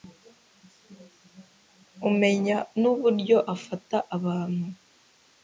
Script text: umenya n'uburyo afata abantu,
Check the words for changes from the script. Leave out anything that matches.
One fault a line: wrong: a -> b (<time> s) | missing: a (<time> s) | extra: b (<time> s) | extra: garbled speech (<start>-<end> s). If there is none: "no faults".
no faults